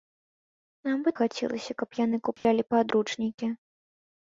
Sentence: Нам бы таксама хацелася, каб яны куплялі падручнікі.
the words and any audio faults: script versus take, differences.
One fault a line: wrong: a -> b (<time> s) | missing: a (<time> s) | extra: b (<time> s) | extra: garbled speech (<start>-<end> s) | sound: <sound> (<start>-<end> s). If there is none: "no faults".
missing: таксама (1.1 s)
sound: dropout (2.4-2.4 s)